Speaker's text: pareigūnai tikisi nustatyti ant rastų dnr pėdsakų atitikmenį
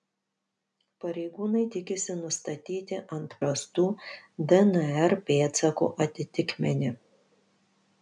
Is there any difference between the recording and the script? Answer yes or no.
no